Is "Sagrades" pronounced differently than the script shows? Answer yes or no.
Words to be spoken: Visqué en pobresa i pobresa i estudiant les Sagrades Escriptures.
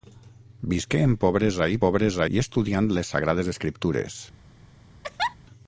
no